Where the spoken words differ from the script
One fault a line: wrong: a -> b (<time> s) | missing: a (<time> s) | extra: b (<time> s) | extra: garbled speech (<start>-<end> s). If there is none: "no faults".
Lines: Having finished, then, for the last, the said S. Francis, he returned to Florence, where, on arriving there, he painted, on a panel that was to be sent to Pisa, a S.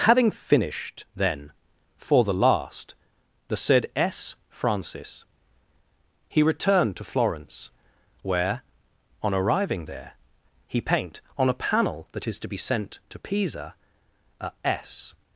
wrong: painted -> paint (10.8 s)
wrong: was -> is (12.3 s)